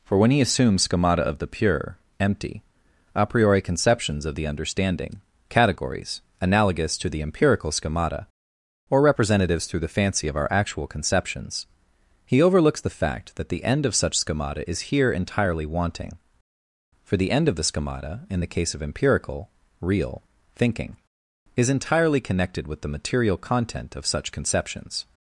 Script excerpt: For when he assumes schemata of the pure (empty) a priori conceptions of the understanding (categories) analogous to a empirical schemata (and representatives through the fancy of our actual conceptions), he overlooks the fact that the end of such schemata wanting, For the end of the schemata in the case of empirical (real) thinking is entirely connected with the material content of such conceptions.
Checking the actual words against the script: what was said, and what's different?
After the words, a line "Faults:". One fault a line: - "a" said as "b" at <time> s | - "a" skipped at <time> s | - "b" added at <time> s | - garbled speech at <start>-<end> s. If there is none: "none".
For when he assumes schemata of the pure (empty) a priori conceptions of the understanding (categories) analogous to the empirical schemata (or representatives through the fancy of our actual conceptions), he overlooks the fact that the end of such schemata is here entirely wanting, For the end of the schemata in the case of empirical (real) thinking is entirely connected with the material content of such conceptions.
Faults:
- "a" said as "the" at 7.1 s
- "and" said as "or" at 8.9 s
- "is here entirely" added at 14.7 s